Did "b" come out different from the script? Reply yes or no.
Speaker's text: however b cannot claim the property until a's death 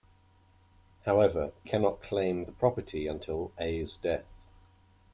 yes